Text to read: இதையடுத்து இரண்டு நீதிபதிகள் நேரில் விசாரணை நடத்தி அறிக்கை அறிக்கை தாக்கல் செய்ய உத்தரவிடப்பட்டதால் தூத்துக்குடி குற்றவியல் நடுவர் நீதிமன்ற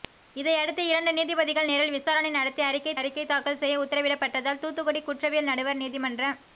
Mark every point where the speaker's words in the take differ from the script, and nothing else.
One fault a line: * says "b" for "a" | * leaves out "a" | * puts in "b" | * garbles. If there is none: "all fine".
all fine